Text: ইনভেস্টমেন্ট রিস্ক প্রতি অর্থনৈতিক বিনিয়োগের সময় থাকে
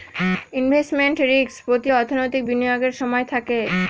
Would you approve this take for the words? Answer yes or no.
yes